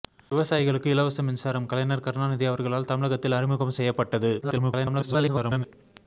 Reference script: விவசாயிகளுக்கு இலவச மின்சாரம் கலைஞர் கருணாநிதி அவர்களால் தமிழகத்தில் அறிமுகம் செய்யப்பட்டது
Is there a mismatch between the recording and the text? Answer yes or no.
yes